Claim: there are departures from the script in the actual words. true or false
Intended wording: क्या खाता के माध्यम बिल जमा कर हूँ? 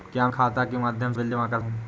false